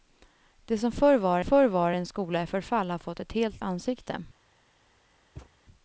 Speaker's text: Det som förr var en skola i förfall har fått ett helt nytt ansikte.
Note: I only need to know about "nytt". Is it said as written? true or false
false